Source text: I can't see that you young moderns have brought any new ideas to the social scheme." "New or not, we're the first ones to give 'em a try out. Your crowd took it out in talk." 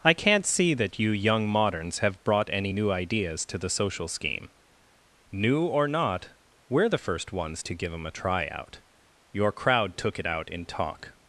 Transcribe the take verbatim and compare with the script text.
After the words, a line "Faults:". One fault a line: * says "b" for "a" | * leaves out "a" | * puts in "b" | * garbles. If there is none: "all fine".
I can't see that you young moderns have brought any new ideas to the social scheme." "New or not, we're the first ones to give 'em a try out. Your crowd took it out in talk."
Faults:
all fine